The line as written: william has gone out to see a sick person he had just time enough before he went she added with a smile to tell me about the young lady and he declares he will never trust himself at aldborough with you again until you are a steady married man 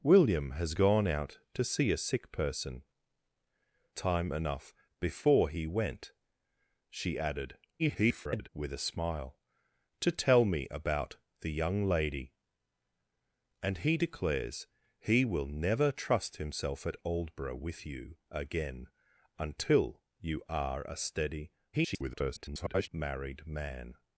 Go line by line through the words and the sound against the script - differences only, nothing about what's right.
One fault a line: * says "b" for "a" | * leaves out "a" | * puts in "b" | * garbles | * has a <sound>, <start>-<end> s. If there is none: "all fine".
* leaves out "he had just"
* garbles
* garbles